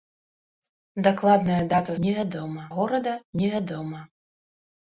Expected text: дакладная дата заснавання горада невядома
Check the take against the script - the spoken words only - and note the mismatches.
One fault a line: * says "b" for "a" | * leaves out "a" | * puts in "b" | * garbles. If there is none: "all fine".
* says "невядома" for "заснавання"